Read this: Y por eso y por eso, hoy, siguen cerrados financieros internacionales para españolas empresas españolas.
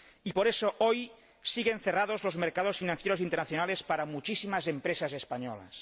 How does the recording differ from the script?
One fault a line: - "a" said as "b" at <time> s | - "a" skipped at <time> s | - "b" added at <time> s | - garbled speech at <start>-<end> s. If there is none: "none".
- "y por eso" skipped at 0.8 s
- "los mercados" added at 2.2 s
- "españolas" said as "muchísimas" at 4.1 s